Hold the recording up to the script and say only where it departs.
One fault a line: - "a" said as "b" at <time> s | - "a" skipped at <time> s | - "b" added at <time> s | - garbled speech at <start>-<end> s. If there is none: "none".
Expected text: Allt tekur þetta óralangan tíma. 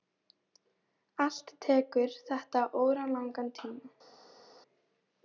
none